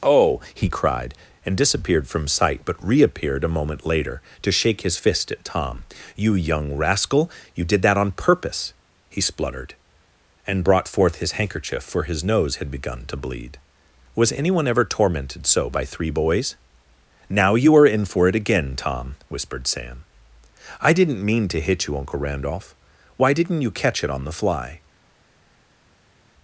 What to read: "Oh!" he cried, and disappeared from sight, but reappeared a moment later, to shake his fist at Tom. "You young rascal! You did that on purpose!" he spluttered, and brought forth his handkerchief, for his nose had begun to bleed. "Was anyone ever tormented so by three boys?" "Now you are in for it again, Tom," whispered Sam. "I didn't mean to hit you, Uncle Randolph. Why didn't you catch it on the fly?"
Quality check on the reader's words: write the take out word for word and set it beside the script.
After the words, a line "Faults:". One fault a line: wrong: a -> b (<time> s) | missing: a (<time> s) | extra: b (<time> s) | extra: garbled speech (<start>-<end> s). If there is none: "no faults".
"Oh!" he cried, and disappeared from sight, but reappeared a moment later, to shake his fist at Tom. "You young rascal! You did that on purpose!" he spluttered, and brought forth his handkerchief, for his nose had begun to bleed. "Was anyone ever tormented so by three boys?" "Now you are in for it again, Tom," whispered Sam. "I didn't mean to hit you, Uncle Randolph. Why didn't you catch it on the fly?"
Faults:
no faults